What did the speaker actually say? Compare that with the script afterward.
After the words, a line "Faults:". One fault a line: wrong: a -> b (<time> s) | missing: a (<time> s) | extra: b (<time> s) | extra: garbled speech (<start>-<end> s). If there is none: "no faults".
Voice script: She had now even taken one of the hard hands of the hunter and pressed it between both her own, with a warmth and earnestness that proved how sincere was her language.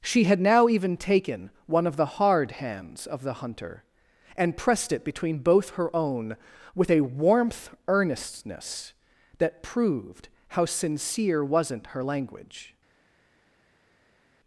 She had now even taken one of the hard hands of the hunter and pressed it between both her own, with a warmth earnestness that proved how sincere wasn't her language.
Faults:
missing: and (7.7 s)
wrong: was -> wasn't (11.4 s)